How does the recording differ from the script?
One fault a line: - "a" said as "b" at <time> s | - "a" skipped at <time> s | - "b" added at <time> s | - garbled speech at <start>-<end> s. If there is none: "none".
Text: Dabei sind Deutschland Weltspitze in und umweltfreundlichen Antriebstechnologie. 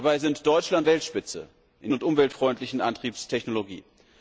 none